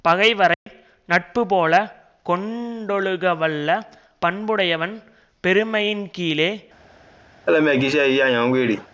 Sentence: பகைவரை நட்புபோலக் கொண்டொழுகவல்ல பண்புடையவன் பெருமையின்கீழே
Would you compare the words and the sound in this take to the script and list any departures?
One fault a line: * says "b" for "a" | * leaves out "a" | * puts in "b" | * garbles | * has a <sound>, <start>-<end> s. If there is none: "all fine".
* has a dropout, 0.5-0.7 s
* has a laugh, 7.5-8.9 s